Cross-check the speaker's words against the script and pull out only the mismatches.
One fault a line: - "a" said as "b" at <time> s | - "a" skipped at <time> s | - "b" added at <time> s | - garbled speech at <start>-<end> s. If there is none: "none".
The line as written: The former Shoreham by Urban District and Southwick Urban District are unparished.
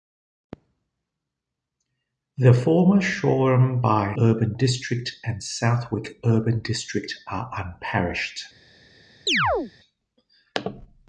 none